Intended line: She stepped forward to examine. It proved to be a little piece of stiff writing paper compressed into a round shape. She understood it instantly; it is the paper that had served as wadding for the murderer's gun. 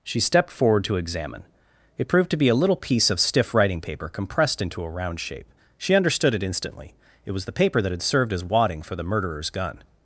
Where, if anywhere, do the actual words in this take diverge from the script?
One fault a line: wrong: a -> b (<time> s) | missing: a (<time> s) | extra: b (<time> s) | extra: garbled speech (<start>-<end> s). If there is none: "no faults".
wrong: is -> was (7.3 s)